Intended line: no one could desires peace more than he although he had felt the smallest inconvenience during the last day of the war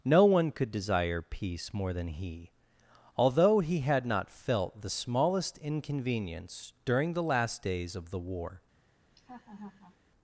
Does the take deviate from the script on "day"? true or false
true